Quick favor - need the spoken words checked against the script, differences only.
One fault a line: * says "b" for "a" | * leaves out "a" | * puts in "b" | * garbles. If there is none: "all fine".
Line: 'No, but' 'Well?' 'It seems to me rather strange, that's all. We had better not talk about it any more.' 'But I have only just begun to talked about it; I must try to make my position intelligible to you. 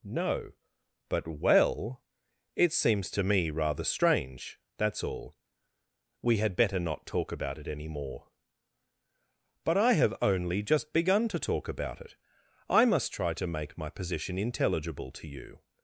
* says "talk" for "talked"